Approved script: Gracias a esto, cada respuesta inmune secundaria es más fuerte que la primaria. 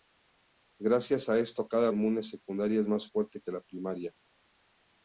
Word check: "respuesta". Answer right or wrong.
wrong